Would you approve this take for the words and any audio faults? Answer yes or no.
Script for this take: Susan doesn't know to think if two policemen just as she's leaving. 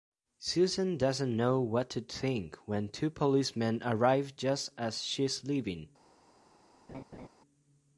no